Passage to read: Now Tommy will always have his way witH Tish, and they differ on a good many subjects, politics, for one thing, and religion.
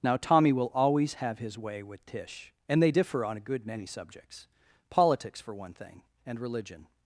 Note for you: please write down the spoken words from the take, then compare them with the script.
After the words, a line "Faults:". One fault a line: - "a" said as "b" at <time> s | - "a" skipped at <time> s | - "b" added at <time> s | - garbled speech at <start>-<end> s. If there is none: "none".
Now Tommy will always have his way witH Tish, and they differ on a good many subjects, politics, for one thing, and religion.
Faults:
none